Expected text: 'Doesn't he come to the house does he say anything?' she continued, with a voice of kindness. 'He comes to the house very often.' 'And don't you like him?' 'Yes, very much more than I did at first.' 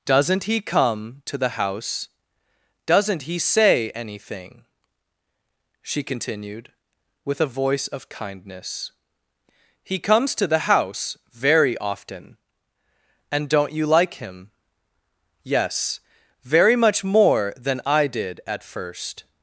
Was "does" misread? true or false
true